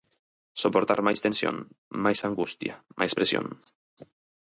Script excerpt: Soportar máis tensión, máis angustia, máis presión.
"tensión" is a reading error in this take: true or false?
false